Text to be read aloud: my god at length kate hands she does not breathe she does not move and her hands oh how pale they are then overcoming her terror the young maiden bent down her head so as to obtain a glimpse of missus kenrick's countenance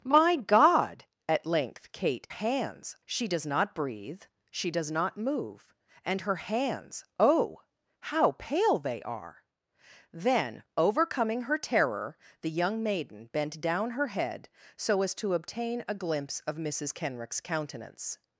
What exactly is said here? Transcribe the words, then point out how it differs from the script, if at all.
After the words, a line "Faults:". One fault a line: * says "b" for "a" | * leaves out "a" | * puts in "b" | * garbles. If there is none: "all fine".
my god at length kate hands she does not breathe she does not move and her hands oh how pale they are then overcoming her terror the young maiden bent down her head so as to obtain a glimpse of missus kenrick's countenance
Faults:
all fine